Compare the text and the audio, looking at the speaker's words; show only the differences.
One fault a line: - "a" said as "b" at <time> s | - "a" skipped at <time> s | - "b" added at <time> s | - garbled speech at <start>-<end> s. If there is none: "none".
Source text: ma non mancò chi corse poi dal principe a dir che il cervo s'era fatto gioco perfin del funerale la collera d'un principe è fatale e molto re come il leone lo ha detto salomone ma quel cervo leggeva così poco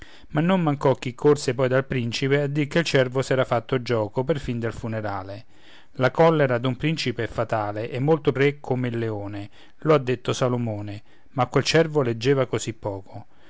none